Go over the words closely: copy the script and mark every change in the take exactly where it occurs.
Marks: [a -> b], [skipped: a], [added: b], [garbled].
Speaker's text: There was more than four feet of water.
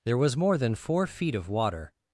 There was more than four feet of water.